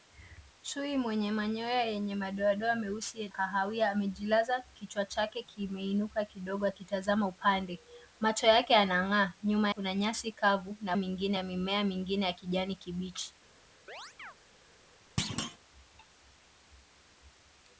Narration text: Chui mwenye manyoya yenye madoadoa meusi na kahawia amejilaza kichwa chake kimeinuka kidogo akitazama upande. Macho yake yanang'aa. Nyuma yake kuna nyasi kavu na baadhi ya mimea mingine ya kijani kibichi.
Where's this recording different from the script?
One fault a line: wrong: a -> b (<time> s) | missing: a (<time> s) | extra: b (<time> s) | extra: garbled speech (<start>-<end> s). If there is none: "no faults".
missing: na (3.3 s)
missing: yake (9.7 s)
wrong: baadhi -> mingine (11.0 s)